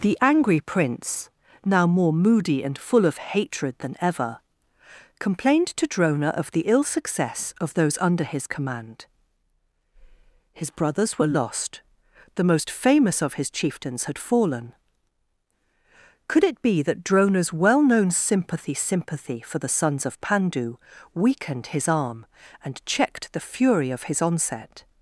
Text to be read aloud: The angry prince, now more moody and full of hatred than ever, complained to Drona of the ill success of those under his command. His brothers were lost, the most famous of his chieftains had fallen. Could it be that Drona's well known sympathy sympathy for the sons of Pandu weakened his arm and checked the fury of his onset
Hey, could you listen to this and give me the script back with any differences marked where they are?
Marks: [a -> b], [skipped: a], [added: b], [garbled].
The angry prince, now more moody and full of hatred than ever, complained to Drona of the ill success of those under his command. His brothers were lost, the most famous of his chieftains had fallen. Could it be that Drona's well known sympathy sympathy for the sons of Pandu weakened his arm and checked the fury of his onset